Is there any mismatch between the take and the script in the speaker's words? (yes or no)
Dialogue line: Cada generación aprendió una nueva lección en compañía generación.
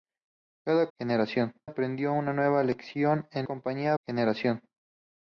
no